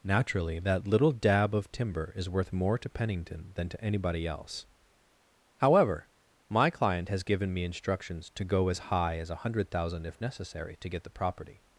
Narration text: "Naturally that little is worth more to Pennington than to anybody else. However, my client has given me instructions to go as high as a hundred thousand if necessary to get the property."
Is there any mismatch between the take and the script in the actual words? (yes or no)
yes